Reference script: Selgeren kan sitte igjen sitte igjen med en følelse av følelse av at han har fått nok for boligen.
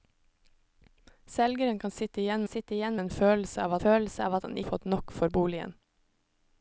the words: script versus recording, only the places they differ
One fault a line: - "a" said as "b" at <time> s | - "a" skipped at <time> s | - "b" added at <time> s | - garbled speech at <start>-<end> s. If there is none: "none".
none